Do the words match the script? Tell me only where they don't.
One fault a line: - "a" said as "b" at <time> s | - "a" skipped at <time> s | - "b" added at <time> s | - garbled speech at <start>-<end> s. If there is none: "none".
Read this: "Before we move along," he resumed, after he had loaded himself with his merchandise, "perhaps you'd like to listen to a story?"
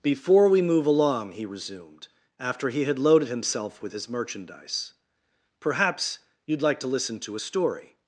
none